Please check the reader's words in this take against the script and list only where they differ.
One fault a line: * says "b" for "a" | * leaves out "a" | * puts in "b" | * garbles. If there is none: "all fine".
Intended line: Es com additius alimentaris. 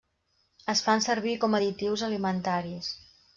* puts in "fan servir"